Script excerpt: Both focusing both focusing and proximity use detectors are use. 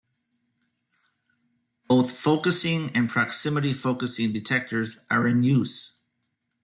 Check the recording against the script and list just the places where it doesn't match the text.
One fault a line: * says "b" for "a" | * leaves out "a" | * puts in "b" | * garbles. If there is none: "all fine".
* leaves out "both focusing"
* says "focusing" for "use"
* puts in "in"